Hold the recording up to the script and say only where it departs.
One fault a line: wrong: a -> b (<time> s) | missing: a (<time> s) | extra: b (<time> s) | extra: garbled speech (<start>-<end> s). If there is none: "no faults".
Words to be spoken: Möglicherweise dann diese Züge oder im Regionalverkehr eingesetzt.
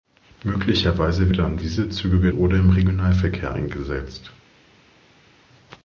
no faults